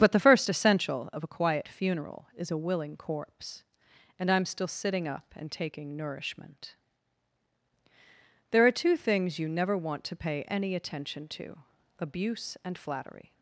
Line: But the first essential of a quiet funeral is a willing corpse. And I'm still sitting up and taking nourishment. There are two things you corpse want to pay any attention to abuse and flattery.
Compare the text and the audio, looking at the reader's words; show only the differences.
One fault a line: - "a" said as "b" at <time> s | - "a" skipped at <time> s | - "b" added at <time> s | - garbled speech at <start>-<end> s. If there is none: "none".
- "corpse" said as "never" at 9.5 s